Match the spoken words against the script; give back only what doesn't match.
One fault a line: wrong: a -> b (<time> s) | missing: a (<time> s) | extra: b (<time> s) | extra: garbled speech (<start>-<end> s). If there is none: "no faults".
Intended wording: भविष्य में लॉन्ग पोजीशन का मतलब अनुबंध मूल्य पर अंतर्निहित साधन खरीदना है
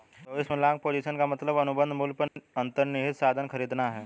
no faults